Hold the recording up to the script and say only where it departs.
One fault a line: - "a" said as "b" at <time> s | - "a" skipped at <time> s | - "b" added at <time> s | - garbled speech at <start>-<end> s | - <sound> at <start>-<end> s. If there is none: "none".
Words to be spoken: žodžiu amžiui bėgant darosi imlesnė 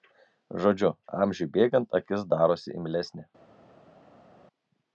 - "akis" added at 2.0 s